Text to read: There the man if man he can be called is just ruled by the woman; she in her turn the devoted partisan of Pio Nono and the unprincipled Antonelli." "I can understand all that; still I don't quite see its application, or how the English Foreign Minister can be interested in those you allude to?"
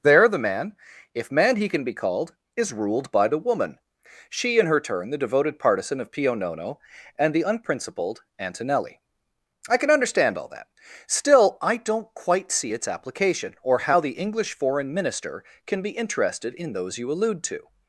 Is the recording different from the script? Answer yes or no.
yes